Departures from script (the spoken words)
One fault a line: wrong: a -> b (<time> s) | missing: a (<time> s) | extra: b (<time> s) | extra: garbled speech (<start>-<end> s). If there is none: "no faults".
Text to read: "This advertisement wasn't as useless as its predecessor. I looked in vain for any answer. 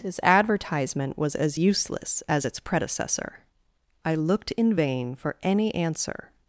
wrong: wasn't -> was (1.2 s)